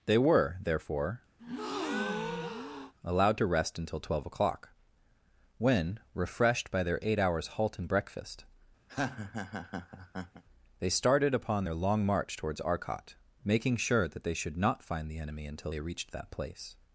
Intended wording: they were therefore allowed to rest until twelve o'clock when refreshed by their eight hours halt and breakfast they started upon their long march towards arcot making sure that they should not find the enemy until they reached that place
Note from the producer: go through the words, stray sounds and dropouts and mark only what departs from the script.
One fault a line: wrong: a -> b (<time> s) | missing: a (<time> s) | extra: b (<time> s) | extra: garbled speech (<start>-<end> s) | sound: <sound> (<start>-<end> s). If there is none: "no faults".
sound: breath (1.4-2.9 s)
sound: laugh (8.9-10.4 s)